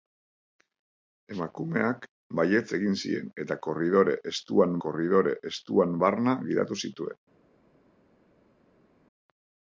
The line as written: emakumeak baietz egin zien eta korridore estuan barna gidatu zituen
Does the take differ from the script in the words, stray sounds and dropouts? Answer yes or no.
yes